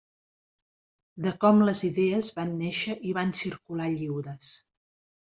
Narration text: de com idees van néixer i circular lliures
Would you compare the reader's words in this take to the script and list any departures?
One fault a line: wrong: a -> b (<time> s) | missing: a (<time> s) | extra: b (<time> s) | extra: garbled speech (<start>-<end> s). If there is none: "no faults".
extra: les (1.7 s)
extra: van (3.2 s)